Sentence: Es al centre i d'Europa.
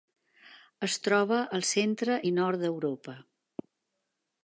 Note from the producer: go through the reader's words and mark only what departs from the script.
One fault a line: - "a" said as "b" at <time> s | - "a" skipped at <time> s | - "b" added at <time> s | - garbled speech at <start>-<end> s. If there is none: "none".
- "troba" added at 1.1 s
- "nord" added at 2.4 s